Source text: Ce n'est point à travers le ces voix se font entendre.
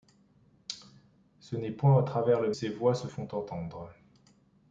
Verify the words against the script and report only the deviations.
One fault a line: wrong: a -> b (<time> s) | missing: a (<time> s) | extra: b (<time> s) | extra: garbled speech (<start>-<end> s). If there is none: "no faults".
no faults